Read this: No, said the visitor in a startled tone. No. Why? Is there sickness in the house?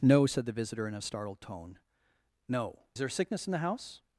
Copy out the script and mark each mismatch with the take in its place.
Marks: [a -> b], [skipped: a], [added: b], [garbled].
No, said the visitor in a startled tone. No. [skipped: Why? Is] there sickness in the house?